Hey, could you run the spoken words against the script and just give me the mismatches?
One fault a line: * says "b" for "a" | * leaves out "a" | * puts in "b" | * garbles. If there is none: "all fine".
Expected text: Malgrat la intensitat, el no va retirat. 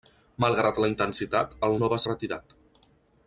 all fine